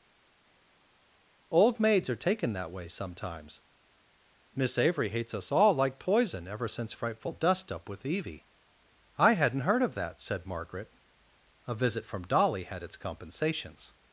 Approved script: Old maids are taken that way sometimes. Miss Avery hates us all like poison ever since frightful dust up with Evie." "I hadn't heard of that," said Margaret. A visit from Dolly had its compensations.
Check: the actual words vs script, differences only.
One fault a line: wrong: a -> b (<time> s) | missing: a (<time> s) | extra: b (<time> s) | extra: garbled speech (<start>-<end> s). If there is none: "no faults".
no faults